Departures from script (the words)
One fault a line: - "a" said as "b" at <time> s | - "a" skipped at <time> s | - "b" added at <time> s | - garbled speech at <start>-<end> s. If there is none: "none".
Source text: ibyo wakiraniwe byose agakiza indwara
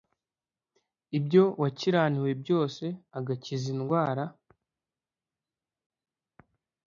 none